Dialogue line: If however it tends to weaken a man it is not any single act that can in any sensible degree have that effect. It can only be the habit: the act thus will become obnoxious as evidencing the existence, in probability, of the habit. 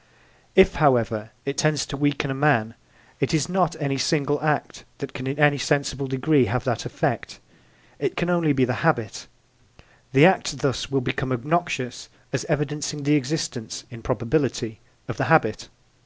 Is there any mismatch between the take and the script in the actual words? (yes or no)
no